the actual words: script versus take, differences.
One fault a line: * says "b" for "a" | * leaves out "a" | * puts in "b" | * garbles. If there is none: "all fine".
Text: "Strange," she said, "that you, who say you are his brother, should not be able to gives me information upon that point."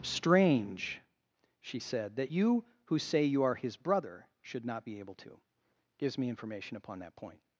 all fine